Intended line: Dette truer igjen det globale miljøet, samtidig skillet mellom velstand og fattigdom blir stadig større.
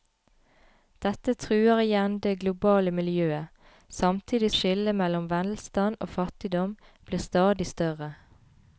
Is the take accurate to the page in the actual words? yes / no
yes